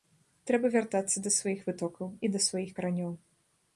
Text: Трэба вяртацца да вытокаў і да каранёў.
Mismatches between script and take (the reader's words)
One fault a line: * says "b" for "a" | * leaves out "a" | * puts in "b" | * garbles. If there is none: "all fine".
* puts in "сваіх"
* puts in "сваіх"